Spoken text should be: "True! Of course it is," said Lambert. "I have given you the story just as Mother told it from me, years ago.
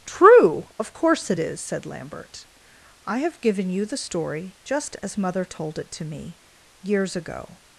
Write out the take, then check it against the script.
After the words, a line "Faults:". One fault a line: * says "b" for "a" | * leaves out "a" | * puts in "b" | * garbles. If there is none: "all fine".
"True! Of course it is," said Lambert. "I have given you the story just as Mother told it to me, years ago.
Faults:
* says "to" for "from"